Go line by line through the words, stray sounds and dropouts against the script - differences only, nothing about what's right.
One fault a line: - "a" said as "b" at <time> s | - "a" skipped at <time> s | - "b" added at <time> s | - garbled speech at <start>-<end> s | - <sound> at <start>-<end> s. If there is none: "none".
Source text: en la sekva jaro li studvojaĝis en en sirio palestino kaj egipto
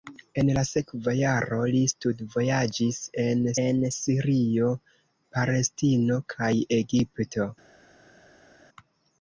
none